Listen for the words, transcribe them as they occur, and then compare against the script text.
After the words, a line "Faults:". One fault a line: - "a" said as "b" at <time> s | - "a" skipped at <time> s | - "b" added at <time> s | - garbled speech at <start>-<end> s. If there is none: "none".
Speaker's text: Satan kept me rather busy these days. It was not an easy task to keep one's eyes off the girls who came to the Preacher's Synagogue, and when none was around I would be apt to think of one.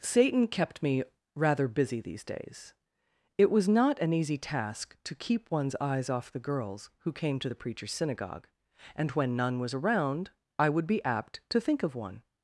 Satan kept me rather busy these days. It was not an easy task to keep one's eyes off the girls who came to the Preacher's Synagogue, and when none was around I would be apt to think of one.
Faults:
none